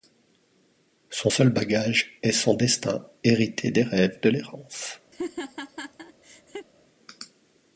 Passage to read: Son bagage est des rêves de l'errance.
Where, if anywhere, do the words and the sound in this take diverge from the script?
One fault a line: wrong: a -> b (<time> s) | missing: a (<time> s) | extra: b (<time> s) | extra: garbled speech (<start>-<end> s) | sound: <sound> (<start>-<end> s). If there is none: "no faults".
extra: seul (1.3 s)
extra: son destin hérité (2.3 s)
sound: laugh (5.1-6.7 s)